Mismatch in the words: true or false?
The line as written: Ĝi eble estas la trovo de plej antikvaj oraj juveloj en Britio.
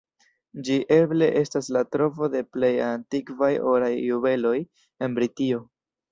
false